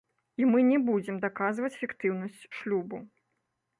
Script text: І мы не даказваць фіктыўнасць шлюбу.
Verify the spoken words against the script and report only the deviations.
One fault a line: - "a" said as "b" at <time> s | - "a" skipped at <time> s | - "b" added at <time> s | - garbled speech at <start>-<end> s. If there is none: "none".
- "будзем" added at 0.9 s